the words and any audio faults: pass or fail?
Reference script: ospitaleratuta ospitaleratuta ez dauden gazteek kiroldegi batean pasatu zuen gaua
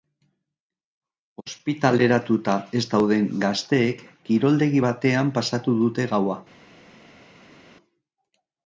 fail